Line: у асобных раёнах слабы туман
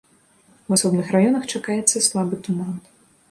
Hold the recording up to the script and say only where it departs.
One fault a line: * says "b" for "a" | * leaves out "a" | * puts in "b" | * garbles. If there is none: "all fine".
* puts in "чакаецца"